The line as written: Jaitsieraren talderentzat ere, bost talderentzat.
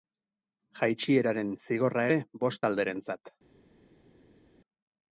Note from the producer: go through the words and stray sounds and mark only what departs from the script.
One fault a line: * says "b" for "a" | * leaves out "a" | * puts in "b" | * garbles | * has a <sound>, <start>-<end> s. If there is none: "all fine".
* says "zigorra" for "talderentzat"